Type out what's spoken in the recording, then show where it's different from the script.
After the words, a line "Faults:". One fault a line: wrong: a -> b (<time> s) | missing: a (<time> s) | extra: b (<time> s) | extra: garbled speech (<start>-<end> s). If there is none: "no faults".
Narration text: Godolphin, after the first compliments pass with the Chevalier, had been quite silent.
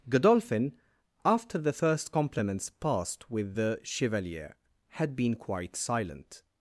Godolphin, after the first compliments passed with the Chevalier, had been quite silent.
Faults:
wrong: pass -> passed (2.7 s)